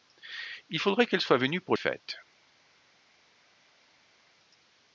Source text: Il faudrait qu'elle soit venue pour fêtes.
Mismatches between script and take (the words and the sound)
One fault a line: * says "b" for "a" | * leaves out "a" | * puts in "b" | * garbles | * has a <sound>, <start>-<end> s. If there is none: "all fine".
all fine